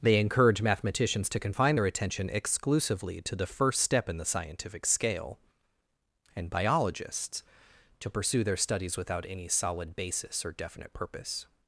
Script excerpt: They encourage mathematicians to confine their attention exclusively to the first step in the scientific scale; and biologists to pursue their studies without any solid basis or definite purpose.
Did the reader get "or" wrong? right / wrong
right